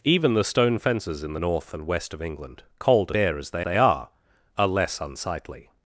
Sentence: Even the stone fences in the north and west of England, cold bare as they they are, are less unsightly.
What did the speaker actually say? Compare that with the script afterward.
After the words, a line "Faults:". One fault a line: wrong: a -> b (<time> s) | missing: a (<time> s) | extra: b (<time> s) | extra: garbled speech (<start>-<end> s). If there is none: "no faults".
Even the stone fences in the north and west of England, cold bare as they they are, are less unsightly.
Faults:
no faults